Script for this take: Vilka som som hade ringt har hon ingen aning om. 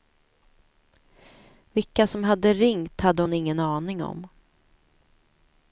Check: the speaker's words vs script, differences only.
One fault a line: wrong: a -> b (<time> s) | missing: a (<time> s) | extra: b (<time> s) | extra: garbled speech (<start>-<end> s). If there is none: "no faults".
missing: som (2.2 s)
wrong: har -> hade (3.0 s)